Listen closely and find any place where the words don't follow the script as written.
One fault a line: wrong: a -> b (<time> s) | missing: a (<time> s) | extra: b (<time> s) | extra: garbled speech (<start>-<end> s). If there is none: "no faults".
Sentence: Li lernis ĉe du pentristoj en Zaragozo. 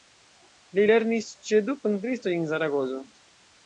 no faults